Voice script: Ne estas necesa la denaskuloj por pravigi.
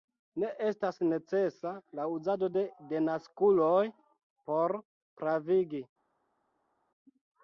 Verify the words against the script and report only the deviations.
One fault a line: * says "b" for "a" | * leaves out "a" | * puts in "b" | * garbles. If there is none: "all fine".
* puts in "uzado de"